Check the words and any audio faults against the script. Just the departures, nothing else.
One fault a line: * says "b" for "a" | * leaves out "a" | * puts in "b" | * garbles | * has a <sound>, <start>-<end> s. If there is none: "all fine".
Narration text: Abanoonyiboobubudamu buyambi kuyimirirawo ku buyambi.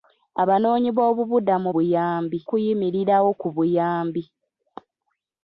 all fine